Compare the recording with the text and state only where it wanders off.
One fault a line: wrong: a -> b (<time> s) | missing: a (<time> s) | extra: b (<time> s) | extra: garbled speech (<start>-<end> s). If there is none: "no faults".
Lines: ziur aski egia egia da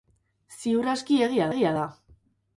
no faults